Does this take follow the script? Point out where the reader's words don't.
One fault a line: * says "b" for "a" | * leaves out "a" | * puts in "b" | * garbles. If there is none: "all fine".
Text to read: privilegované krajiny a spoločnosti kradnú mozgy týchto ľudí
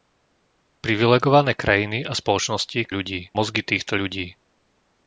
* says "ľudí" for "kradnú"